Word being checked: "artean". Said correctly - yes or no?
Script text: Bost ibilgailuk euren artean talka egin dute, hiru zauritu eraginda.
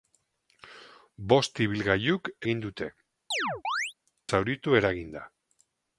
no